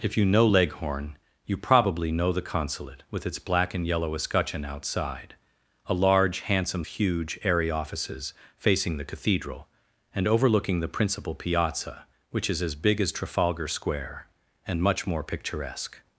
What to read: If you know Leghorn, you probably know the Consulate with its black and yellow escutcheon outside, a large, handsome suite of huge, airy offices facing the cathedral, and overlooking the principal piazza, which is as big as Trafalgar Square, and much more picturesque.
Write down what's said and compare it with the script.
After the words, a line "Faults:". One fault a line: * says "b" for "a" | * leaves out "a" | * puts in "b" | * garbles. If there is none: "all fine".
If you know Leghorn, you probably know the Consulate with its black and yellow escutcheon outside, a large, handsome huge, airy offices facing the cathedral, and overlooking the principal piazza, which is as big as Trafalgar Square, and much more picturesque.
Faults:
* leaves out "suite of"